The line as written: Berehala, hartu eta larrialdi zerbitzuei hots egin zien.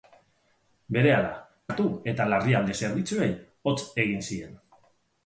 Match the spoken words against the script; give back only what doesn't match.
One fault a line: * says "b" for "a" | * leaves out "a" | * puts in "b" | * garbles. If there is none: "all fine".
all fine